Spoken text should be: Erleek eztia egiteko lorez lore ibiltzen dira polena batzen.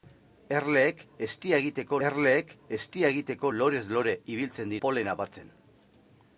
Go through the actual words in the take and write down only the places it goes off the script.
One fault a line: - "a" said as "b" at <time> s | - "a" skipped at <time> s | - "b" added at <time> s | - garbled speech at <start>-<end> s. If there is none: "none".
- "erleek eztia egiteko" added at 2.1 s
- "dira" skipped at 4.8 s